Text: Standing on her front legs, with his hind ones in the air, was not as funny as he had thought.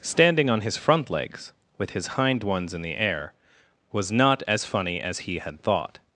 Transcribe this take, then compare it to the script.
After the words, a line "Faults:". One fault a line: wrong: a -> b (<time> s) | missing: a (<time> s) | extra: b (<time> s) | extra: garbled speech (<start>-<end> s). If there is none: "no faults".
Standing on his front legs, with his hind ones in the air, was not as funny as he had thought.
Faults:
wrong: her -> his (0.6 s)